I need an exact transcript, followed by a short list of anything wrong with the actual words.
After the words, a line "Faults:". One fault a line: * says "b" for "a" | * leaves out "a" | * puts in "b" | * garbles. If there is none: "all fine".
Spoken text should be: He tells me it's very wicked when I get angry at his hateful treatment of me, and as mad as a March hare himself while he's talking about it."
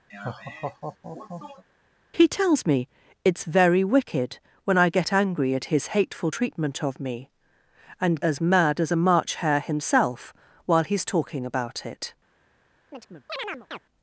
He tells me it's very wicked when I get angry at his hateful treatment of me, and as mad as a March hare himself while he's talking about it."
Faults:
all fine